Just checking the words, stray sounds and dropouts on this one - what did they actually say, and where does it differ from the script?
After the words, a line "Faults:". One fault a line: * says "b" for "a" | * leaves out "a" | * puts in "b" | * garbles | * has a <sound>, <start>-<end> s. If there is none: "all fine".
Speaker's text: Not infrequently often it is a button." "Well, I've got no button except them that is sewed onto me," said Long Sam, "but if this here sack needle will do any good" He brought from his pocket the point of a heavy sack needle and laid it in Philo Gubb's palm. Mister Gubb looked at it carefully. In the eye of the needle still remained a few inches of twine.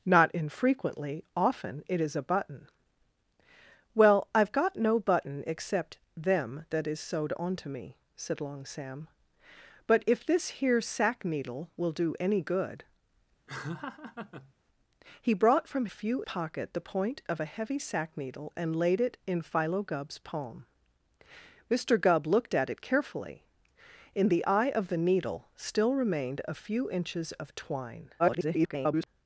Not infrequently often it is a button." "Well, I've got no button except them that is sewed onto me," said Long Sam, "but if this here sack needle will do any good" He brought from few pocket the point of a heavy sack needle and laid it in Philo Gubb's palm. Mister Gubb looked at it carefully. In the eye of the needle still remained a few inches of twine. [garbled]
Faults:
* has a laugh, 13.5-14.5 s
* says "few" for "his"
* garbles